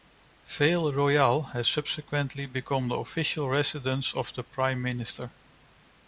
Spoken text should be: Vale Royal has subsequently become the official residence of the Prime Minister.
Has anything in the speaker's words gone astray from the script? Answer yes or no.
no